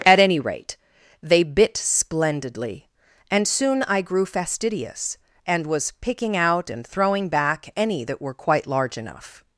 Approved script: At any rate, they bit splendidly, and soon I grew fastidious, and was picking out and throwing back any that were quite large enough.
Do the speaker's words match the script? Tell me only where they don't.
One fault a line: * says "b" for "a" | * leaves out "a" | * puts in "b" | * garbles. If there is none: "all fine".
all fine